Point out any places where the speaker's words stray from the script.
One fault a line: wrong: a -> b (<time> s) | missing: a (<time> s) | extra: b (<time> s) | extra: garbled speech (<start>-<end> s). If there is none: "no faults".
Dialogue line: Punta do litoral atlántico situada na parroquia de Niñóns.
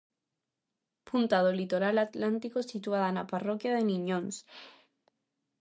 no faults